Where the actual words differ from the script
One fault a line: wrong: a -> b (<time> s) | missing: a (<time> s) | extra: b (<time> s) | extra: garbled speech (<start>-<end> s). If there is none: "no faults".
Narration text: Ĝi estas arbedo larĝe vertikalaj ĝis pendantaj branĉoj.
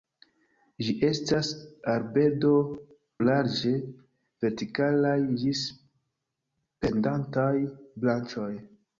no faults